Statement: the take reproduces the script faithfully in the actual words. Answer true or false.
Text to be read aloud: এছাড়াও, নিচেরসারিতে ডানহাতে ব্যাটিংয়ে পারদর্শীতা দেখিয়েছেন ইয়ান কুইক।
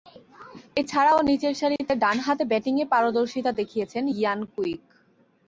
true